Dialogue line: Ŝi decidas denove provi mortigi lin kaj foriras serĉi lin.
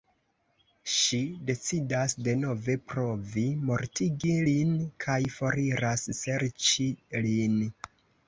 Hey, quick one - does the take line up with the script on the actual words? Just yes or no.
yes